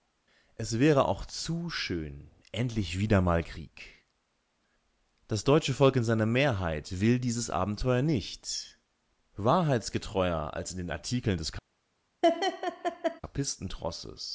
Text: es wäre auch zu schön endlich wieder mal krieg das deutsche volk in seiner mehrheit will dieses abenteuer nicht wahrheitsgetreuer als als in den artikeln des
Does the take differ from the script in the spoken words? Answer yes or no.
yes